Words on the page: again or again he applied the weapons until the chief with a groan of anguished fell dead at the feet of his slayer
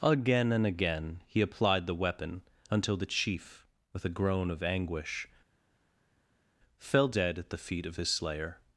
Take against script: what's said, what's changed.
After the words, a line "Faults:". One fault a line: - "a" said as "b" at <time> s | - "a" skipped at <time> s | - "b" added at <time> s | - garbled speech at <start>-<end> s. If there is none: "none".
again and again he applied the weapon until the chief with a groan of anguish fell dead at the feet of his slayer
Faults:
- "or" said as "and" at 0.5 s
- "weapons" said as "weapon" at 1.9 s
- "anguished" said as "anguish" at 4.6 s